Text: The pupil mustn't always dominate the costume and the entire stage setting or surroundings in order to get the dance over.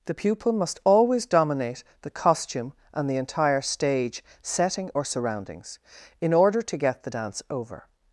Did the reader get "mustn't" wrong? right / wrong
wrong